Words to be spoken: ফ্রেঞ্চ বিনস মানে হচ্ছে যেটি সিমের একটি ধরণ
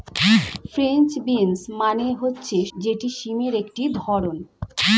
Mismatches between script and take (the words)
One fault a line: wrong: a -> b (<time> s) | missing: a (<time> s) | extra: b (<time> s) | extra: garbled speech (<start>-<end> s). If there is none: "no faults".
no faults